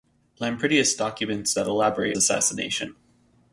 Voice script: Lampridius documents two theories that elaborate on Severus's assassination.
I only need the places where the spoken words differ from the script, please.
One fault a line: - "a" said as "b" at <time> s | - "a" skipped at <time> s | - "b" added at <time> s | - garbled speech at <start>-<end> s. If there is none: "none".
- "two theories" skipped at 1.5 s
- "on Severus's" skipped at 2.2 s